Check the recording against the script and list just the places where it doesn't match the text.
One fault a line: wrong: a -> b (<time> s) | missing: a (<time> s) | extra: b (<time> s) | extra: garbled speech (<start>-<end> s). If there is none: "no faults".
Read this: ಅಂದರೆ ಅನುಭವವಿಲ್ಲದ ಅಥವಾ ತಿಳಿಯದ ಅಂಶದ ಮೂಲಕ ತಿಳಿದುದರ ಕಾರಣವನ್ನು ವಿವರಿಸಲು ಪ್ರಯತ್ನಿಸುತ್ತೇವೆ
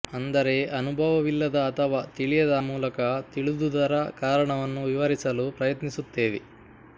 missing: ಅಂಶದ (2.5 s)